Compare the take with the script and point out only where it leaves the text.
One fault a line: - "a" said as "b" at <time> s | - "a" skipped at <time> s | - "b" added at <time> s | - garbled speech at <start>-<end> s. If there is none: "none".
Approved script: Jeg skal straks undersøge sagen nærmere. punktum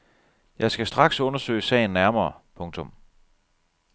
none